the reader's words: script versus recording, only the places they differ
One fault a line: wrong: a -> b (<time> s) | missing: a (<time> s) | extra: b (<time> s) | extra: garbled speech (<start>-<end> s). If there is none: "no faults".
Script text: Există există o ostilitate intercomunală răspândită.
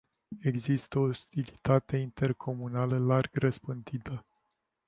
missing: există (1.0 s)
extra: larg (3.0 s)